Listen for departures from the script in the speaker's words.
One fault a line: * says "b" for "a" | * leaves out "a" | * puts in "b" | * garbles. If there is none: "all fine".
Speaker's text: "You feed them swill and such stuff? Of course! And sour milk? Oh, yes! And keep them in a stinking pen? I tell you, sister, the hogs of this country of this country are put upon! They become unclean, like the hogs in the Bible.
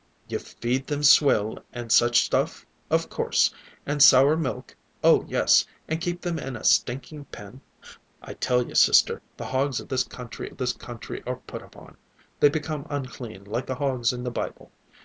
all fine